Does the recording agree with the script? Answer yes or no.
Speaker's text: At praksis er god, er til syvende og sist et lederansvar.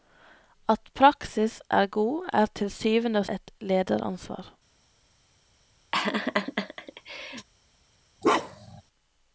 no